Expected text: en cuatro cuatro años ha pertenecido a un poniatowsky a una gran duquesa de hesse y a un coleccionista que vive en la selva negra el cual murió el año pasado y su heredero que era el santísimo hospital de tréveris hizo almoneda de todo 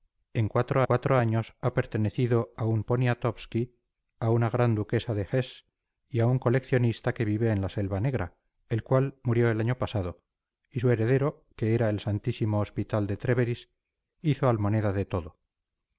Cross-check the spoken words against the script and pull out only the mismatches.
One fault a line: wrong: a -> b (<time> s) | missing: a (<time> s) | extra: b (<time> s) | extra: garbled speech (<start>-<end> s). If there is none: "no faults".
no faults